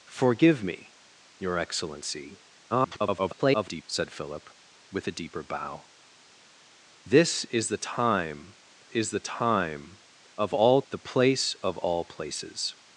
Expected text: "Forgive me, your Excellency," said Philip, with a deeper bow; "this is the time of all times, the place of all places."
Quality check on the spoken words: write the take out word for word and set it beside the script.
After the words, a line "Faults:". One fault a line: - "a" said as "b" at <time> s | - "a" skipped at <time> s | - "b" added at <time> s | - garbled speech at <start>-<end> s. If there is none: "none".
"Forgive me, your Excellency," [garbled] said Philip, with a deeper bow; "this is the time is the time of all the place of all places."
Faults:
- garbled speech at 2.7-3.8 s
- "is the time" added at 8.9 s
- "times" skipped at 10.8 s